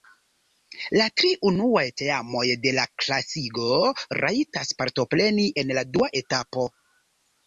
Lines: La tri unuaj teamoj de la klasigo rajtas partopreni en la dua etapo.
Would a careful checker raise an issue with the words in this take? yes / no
no